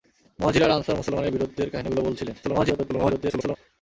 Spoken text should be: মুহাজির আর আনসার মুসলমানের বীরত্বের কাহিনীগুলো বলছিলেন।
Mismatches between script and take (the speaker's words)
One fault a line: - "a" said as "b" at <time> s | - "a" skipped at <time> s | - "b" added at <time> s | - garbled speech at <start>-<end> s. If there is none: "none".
- garbled speech at 2.4-3.6 s